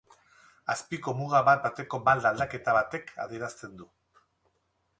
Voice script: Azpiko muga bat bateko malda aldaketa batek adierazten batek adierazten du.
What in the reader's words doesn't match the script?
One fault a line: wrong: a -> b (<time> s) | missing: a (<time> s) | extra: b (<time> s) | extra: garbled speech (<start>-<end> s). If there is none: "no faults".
missing: batek adierazten (3.8 s)